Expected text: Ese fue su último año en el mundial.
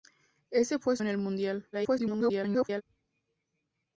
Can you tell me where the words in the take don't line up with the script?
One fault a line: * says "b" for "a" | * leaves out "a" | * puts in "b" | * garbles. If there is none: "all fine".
* leaves out "su último año"
* garbles